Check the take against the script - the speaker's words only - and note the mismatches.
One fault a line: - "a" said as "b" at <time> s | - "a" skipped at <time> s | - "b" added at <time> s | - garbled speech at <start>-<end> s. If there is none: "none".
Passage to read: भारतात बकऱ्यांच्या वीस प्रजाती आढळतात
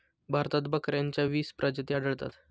none